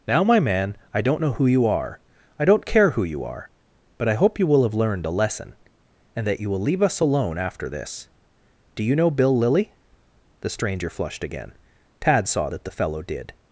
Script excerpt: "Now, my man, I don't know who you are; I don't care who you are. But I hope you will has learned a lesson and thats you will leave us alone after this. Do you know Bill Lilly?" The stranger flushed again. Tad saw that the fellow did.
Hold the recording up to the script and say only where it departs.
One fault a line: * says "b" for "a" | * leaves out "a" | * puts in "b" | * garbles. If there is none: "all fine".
* says "have" for "has"
* says "that" for "thats"